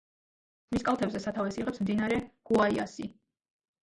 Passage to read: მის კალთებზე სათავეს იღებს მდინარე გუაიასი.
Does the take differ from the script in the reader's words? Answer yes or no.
no